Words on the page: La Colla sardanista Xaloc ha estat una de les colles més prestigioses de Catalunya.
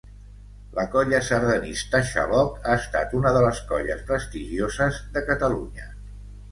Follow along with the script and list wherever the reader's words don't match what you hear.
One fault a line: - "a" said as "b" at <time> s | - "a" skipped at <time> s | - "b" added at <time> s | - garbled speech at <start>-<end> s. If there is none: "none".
- "més" skipped at 4.0 s